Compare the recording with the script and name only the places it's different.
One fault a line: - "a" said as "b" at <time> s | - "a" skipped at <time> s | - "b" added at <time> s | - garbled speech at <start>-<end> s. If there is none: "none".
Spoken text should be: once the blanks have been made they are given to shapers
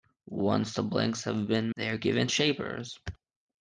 - "made" skipped at 1.7 s
- "to" skipped at 2.3 s